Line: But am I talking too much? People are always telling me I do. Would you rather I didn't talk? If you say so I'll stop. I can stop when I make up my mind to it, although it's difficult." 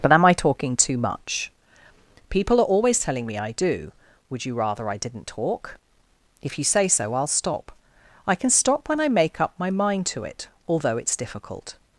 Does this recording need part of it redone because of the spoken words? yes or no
no